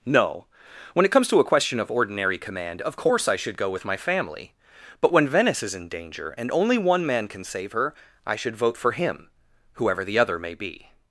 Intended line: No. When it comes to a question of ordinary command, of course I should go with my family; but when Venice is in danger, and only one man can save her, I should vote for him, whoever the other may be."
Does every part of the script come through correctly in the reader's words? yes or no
yes